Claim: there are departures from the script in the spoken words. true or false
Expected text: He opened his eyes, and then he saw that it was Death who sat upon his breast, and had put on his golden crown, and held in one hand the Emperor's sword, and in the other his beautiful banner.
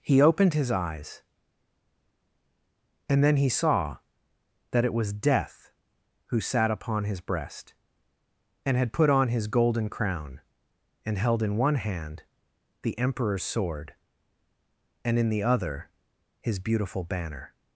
false